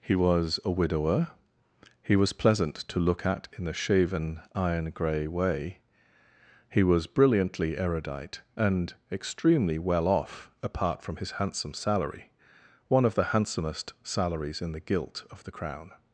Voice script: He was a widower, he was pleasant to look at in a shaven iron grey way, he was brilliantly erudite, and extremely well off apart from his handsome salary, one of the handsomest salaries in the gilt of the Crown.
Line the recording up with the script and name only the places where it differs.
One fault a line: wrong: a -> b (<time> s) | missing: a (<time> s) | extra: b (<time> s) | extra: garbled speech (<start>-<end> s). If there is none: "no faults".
no faults